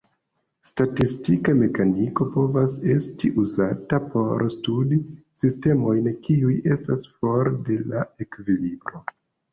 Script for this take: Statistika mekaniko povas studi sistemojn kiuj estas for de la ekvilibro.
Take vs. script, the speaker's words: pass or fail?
fail